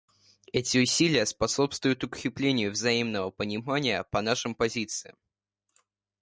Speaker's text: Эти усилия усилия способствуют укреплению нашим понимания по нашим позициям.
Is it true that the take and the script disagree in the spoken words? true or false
true